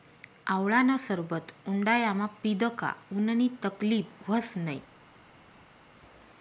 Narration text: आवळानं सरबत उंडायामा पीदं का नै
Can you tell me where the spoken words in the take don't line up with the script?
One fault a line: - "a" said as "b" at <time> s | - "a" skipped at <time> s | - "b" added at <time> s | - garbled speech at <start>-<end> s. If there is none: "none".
- "उननी तकलीब व्हस" added at 3.1 s